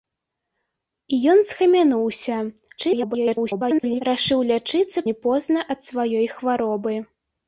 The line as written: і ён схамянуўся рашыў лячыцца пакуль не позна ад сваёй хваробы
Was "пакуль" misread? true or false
true